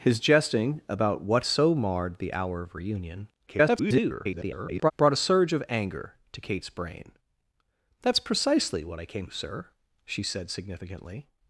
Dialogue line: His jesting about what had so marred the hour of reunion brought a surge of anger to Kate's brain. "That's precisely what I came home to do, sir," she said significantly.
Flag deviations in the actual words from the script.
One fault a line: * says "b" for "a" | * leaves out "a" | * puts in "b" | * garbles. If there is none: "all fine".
* leaves out "had"
* garbles
* leaves out "home to do"